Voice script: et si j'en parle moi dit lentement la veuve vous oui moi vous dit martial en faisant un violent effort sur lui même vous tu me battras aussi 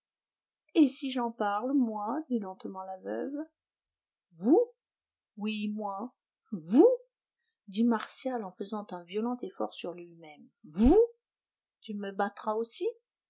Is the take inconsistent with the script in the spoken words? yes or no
no